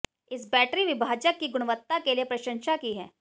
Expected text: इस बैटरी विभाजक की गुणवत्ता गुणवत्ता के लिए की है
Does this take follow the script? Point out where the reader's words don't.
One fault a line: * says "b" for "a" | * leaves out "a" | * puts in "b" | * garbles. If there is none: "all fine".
* leaves out "गुणवत्ता"
* puts in "प्रशंसा"